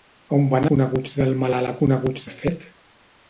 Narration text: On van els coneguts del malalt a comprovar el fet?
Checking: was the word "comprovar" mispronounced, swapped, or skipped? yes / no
yes